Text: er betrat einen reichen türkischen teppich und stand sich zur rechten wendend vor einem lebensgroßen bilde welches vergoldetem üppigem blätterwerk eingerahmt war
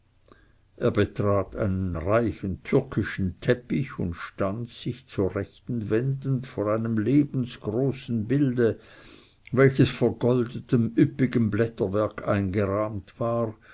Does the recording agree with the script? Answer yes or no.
yes